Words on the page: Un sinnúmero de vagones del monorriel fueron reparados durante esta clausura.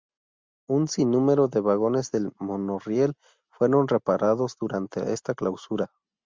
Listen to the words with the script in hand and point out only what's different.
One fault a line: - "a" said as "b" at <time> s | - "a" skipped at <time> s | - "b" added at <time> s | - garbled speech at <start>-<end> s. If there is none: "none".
none